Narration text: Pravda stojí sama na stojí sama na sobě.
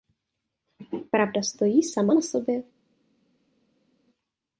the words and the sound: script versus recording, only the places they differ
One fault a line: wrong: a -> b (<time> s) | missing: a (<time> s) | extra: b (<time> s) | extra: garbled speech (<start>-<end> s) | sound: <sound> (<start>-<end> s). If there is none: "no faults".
missing: stojí sama na (2.2 s)